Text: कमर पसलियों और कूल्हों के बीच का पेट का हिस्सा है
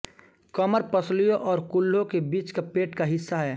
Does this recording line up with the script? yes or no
yes